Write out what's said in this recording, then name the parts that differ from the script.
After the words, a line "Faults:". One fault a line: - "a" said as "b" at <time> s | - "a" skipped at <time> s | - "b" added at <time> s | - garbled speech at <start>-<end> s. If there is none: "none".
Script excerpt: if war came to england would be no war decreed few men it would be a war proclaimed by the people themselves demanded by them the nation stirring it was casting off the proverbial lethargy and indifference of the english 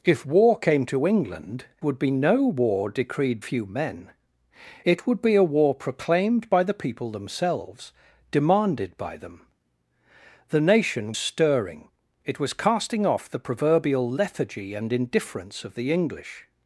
if war came to england would be no war decreed few men it would be a war proclaimed by the people themselves demanded by them the nation stirring it was casting off the proverbial lethargy and indifference of the english
Faults:
none